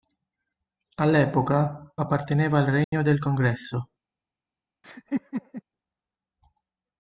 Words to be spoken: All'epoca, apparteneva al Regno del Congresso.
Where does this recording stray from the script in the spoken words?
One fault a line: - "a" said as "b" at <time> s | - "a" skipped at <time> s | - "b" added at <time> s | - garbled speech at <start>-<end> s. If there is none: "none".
none